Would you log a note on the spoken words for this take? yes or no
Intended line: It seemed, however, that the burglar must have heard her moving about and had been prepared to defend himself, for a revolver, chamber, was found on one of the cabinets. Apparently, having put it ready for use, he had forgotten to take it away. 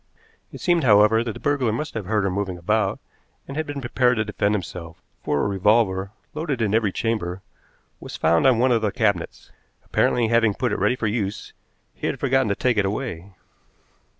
yes